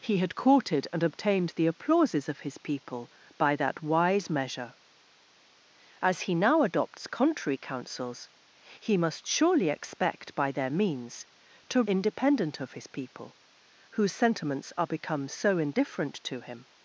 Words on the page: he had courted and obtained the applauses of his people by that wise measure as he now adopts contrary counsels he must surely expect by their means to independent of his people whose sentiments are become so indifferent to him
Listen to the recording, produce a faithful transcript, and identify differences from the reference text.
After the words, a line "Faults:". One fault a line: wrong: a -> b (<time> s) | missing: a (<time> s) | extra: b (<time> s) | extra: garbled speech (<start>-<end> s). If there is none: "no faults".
he had courted and obtained the applauses of his people by that wise measure as he now adopts contrary counsels he must surely expect by their means to independent of his people whose sentiments are become so indifferent to him
Faults:
no faults